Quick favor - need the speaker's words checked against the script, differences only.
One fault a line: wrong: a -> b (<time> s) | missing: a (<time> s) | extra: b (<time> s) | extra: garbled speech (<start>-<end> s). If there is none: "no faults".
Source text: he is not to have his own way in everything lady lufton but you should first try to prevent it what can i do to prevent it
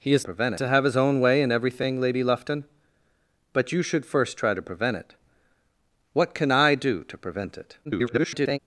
wrong: not -> prevent (0.2 s)
extra: garbled speech (7.8-8.6 s)